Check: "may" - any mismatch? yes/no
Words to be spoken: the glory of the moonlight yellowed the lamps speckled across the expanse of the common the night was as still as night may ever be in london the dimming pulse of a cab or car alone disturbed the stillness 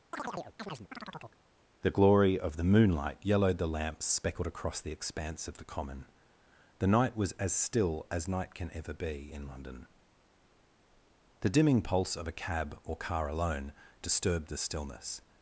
yes